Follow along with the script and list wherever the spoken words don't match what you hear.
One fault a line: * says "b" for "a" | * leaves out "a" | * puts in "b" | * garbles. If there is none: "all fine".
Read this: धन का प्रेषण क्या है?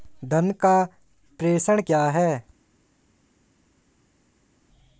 all fine